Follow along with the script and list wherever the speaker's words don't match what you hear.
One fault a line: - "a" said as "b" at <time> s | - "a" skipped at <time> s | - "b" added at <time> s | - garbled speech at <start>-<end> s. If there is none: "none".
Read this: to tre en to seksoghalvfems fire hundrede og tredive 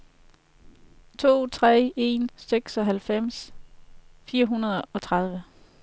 - "to" skipped at 2.3 s